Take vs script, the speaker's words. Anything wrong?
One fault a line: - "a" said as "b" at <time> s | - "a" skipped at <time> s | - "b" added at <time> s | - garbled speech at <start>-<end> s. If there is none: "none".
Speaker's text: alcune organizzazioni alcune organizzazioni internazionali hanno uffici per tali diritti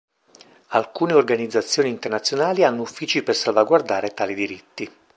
- "alcune organizzazioni" skipped at 1.9 s
- "salvaguardare" added at 3.4 s